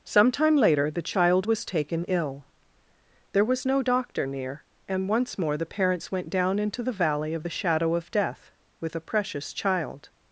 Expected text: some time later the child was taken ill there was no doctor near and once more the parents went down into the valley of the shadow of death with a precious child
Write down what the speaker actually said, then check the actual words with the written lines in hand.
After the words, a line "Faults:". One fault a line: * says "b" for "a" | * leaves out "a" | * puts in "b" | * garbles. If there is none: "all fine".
some time later the child was taken ill there was no doctor near and once more the parents went down into the valley of the shadow of death with a precious child
Faults:
all fine